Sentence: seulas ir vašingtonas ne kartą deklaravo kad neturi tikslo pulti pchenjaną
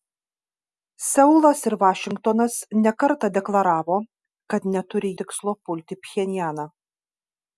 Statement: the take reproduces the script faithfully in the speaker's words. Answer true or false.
true